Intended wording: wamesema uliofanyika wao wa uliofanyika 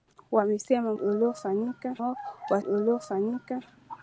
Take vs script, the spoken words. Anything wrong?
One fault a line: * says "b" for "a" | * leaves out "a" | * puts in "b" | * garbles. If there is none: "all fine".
all fine